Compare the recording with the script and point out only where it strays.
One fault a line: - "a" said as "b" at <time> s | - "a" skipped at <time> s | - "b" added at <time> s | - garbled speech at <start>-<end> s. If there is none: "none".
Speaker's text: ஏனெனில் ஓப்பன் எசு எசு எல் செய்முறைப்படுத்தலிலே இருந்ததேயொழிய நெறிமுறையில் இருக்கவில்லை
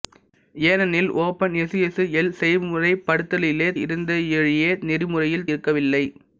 none